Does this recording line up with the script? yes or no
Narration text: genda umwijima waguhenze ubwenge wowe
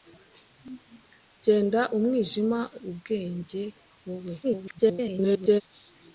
no